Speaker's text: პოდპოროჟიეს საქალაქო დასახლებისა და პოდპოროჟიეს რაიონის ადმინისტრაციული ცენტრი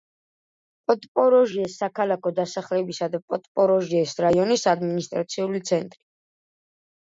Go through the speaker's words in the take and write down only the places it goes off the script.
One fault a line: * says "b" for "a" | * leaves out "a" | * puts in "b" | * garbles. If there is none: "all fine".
all fine